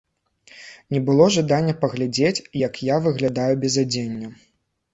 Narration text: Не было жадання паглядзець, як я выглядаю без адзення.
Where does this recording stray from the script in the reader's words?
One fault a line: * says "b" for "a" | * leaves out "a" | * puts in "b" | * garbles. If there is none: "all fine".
all fine